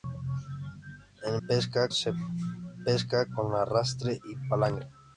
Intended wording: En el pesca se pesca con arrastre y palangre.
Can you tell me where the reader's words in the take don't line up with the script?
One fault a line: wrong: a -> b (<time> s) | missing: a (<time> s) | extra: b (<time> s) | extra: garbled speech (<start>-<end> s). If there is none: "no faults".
no faults